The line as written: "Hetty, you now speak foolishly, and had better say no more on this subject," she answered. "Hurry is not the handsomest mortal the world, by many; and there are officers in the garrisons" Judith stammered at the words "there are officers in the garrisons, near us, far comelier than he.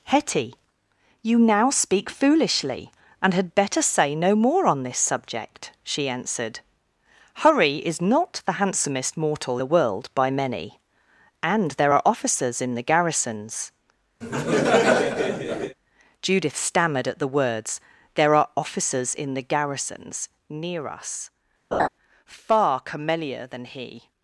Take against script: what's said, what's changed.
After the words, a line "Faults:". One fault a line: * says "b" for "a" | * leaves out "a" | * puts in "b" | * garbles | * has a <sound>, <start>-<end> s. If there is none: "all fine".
"Hetty, you now speak foolishly, and had better say no more on this subject," she answered. "Hurry is not the handsomest mortal the world, by many; and there are officers in the garrisons" Judith stammered at the words "there are officers in the garrisons, near us, far comelier than he.
Faults:
* has a laugh, 14.2-15.8 s
* has a laugh, 21.7-21.9 s